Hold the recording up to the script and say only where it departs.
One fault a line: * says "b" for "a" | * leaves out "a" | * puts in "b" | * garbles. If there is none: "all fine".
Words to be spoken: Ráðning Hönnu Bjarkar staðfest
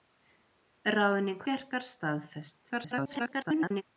* leaves out "Hönnu"
* garbles